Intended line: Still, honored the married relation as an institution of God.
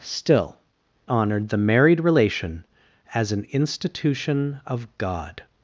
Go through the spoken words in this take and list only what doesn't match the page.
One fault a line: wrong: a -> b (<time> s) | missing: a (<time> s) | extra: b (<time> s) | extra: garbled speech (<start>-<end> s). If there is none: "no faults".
no faults